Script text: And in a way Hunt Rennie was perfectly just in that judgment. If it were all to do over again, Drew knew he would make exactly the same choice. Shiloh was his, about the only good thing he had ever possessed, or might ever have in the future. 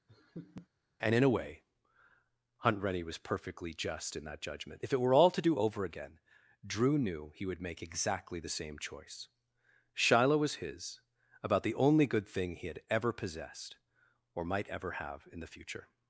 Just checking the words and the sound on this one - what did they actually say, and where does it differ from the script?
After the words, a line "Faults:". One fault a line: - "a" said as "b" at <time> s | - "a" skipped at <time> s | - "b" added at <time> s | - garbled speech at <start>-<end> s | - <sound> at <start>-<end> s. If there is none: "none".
And in a way Hunt Rennie was perfectly just in that judgment. If it were all to do over again, Drew knew he would make exactly the same choice. Shiloh was his, about the only good thing he had ever possessed, or might ever have in the future.
Faults:
- laugh at 0.1-0.7 s